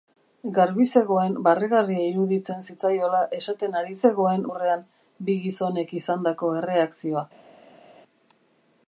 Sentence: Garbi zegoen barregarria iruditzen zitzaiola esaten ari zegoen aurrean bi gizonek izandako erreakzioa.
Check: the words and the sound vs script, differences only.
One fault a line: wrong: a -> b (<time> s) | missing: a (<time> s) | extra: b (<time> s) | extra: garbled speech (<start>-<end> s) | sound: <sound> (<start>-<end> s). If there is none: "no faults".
no faults